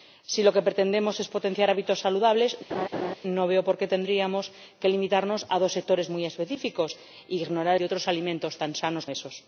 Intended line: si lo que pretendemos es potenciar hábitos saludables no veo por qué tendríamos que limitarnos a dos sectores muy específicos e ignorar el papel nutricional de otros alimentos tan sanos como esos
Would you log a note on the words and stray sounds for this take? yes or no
yes